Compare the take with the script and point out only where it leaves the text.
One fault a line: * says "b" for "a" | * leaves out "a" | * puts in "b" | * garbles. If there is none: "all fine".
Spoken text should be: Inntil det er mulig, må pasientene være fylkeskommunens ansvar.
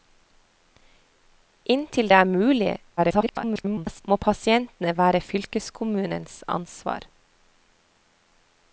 * garbles